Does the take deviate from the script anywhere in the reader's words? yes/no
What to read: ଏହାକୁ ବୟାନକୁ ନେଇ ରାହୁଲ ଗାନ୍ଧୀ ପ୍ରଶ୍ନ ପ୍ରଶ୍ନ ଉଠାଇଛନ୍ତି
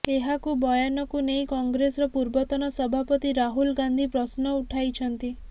yes